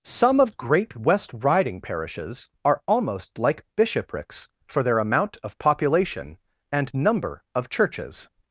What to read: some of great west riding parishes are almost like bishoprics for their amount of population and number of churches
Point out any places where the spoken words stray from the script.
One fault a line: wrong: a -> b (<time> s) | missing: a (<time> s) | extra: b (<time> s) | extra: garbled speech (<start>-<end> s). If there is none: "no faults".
no faults